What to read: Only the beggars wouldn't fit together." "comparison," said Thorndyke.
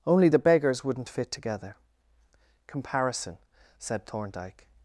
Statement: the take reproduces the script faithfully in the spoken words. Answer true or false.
true